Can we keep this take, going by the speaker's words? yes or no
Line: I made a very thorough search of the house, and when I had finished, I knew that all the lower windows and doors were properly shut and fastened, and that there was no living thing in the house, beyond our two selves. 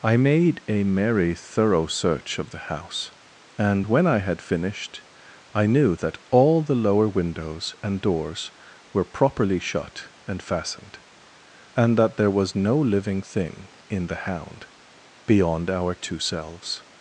no